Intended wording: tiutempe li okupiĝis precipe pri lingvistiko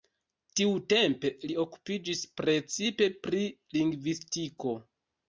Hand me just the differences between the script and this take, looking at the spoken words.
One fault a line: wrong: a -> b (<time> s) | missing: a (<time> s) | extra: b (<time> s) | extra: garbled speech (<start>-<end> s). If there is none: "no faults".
no faults